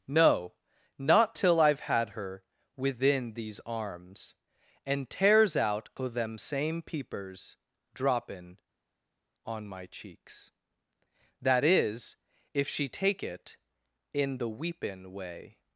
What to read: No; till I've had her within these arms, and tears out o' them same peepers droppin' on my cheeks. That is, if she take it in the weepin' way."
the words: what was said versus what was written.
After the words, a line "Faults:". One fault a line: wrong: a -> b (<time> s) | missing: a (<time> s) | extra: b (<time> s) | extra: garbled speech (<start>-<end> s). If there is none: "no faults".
No; not till I've had her within these arms, and tears out o' them same peepers droppin' on my cheeks. That is, if she take it in the weepin' way."
Faults:
extra: not (1.0 s)